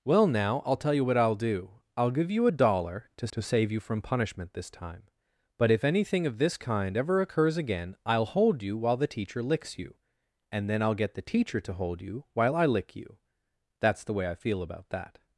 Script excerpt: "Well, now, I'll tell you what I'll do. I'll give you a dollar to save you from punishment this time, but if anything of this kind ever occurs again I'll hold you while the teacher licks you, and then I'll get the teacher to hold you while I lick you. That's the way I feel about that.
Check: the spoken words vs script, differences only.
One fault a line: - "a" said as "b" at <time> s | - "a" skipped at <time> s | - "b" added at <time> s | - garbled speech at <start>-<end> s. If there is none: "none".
- "to" added at 3.3 s